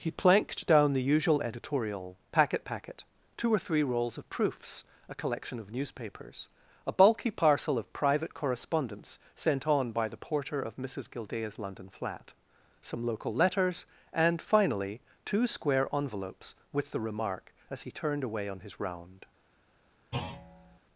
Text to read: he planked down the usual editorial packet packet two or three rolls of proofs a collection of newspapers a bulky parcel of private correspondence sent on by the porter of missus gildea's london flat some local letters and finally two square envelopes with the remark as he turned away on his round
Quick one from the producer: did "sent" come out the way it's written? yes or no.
yes